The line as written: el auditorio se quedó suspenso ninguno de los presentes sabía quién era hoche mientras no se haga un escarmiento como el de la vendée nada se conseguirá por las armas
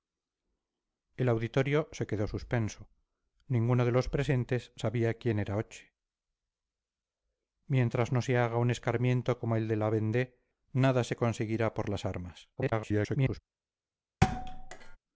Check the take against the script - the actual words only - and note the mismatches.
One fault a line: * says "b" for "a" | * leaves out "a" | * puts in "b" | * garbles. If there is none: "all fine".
* garbles